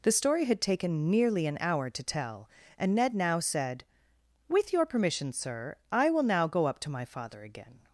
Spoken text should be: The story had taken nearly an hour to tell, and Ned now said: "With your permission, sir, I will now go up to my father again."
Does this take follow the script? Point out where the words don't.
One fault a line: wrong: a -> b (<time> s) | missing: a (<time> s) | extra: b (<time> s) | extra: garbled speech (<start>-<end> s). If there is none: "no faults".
no faults